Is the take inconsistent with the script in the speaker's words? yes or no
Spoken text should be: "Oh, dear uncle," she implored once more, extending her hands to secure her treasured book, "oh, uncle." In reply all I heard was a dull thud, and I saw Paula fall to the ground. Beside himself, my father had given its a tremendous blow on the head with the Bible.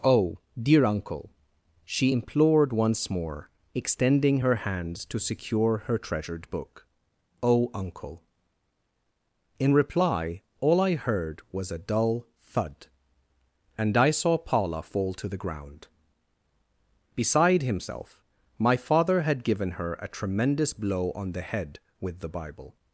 yes